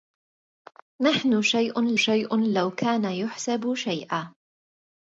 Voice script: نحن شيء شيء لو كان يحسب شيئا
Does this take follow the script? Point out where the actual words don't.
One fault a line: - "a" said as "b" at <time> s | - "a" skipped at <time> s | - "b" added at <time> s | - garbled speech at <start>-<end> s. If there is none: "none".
none